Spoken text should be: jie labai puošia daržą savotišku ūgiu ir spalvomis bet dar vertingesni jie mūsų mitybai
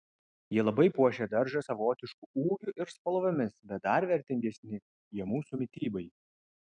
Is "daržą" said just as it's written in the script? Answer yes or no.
yes